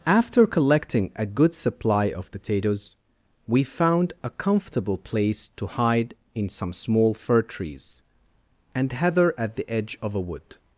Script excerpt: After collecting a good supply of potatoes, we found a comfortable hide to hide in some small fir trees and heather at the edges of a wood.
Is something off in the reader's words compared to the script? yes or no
yes